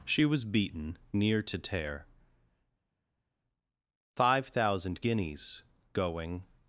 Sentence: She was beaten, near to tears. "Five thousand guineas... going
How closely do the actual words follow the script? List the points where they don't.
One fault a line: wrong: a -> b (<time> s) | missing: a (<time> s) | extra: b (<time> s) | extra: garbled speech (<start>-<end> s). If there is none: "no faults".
wrong: tears -> tear (1.6 s)